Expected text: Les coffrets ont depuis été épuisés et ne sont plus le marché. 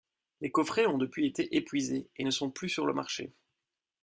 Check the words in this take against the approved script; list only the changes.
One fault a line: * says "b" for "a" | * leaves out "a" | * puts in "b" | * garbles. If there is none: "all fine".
* puts in "sur"